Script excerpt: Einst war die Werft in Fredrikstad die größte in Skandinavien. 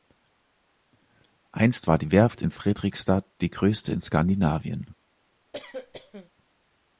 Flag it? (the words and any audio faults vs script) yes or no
yes